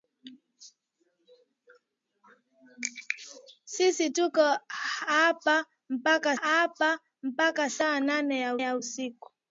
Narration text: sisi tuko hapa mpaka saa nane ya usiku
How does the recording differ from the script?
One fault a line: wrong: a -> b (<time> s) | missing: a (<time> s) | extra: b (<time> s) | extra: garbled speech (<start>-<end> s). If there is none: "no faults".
extra: hapa mpaka (6.4 s)
extra: ya (8.6 s)